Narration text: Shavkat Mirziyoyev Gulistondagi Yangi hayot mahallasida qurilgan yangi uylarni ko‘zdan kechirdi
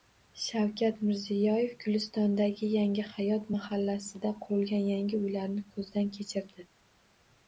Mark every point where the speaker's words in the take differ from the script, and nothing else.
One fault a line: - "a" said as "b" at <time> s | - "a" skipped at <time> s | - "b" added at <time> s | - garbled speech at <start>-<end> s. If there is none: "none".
none